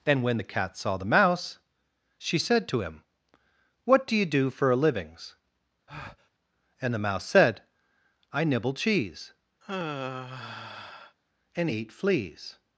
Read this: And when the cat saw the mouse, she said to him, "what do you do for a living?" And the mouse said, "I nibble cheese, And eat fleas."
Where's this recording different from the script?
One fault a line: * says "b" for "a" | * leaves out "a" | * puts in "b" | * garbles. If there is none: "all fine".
* says "livings" for "living"